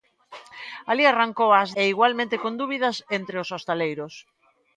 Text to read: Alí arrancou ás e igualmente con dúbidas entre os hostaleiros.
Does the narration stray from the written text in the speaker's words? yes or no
no